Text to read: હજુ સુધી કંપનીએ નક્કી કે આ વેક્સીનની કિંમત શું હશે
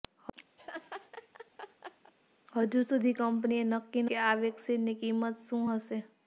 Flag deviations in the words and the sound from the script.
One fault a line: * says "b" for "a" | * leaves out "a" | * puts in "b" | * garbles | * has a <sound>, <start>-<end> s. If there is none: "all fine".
* has a laugh, 0.6-2.1 s